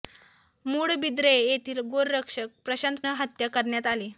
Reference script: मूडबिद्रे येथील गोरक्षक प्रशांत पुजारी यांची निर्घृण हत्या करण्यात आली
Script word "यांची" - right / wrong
wrong